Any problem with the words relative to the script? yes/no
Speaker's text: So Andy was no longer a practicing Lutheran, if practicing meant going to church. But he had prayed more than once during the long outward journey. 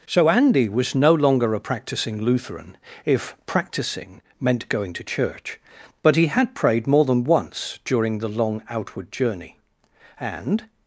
yes